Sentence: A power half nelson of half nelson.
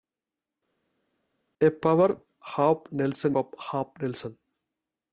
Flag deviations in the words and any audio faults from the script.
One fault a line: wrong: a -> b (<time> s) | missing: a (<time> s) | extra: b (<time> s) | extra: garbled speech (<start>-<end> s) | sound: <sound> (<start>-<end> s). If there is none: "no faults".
no faults